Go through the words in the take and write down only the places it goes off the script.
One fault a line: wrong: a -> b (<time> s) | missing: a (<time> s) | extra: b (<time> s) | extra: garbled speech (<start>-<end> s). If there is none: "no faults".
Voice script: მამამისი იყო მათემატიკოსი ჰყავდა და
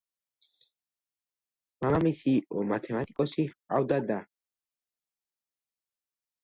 no faults